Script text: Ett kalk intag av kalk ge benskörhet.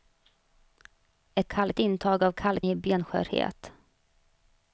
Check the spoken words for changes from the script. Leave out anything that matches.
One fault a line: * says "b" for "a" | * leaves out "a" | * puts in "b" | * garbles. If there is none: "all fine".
all fine